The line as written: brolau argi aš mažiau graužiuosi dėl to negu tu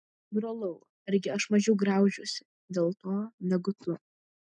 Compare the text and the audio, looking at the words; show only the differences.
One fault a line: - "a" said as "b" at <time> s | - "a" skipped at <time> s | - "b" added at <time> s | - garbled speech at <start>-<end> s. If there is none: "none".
none